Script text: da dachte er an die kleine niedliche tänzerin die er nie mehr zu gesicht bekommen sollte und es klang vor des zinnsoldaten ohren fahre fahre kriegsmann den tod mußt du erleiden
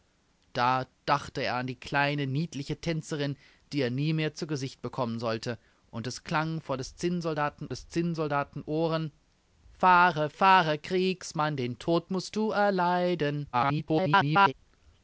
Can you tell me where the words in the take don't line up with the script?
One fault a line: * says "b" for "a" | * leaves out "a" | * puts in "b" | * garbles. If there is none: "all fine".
* puts in "des zinnsoldaten"
* garbles